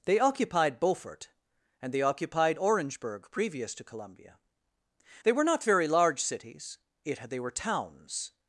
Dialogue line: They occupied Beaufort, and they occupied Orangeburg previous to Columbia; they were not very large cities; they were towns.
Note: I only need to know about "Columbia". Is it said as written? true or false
true